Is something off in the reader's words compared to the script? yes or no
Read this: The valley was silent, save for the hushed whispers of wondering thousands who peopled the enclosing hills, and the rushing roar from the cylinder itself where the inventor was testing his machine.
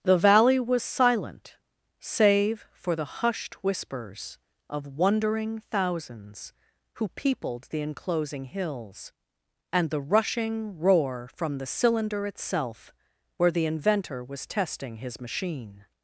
no